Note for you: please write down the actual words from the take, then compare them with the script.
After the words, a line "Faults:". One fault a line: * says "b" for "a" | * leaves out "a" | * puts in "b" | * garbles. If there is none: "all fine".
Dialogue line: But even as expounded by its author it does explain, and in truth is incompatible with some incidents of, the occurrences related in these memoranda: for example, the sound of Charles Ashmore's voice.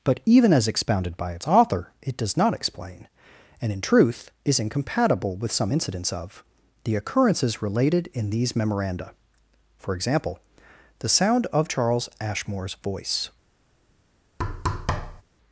But even as expounded by its author it does not explain, and in truth is incompatible with some incidents of, the occurrences related in these memoranda: for example, the sound of Charles Ashmore's voice.
Faults:
* puts in "not"